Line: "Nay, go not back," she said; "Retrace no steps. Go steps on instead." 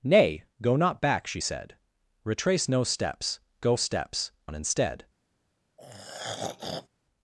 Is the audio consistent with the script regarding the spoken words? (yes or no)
yes